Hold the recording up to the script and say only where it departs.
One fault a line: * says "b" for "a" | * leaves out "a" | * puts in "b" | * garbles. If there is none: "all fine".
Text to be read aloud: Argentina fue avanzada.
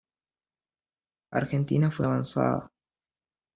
all fine